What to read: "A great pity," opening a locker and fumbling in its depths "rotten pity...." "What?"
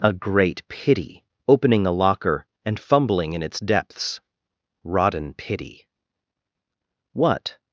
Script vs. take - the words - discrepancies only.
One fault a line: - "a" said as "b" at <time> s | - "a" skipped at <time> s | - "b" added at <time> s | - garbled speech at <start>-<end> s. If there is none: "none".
none